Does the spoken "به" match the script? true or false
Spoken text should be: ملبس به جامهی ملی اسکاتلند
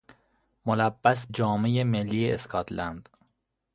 false